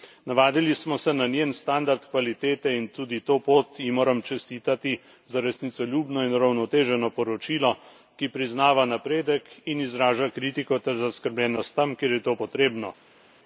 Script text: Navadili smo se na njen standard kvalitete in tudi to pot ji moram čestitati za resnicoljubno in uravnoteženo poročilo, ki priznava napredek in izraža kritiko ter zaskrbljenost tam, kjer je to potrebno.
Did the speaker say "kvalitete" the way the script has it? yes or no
yes